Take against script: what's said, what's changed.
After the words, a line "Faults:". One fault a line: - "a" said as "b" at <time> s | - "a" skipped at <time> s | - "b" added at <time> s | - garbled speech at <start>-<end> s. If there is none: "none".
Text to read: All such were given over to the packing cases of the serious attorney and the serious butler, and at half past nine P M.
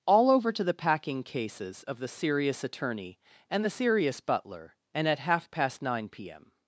All over to the packing cases of the serious attorney and the serious butler, and at half past nine P M.
Faults:
- "such were given" skipped at 0.3 s